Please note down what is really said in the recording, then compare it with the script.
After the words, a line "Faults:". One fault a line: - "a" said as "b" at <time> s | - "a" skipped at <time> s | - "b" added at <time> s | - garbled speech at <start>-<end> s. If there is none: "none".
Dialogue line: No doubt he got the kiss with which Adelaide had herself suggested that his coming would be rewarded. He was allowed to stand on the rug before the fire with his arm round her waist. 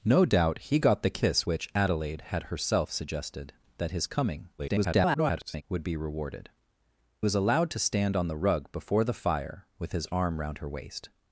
No doubt he got the kiss which Adelaide had herself suggested that his coming [garbled] would be rewarded. Was allowed to stand on the rug before the fire with his arm round her waist.
Faults:
- "with" skipped at 1.5 s
- garbled speech at 4.6-5.6 s
- "He" skipped at 6.5 s